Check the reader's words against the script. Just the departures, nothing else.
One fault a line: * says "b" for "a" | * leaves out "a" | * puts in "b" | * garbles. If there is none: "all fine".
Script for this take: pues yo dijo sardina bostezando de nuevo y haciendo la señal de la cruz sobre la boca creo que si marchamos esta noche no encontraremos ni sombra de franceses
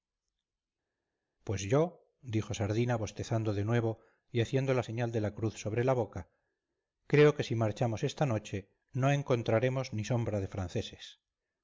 all fine